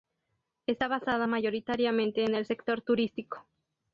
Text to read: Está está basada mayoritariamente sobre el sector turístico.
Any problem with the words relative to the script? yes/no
yes